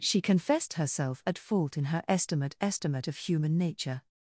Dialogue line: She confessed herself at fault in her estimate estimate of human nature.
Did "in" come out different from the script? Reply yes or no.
no